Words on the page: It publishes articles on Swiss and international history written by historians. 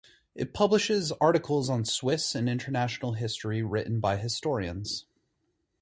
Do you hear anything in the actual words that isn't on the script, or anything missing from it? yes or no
no